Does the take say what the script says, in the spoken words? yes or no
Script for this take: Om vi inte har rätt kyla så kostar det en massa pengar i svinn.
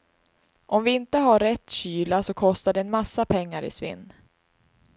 yes